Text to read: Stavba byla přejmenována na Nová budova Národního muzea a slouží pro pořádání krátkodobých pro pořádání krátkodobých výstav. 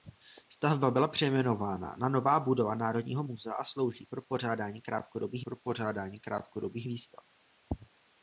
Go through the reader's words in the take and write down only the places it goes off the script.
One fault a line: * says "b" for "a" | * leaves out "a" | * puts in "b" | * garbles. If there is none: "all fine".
all fine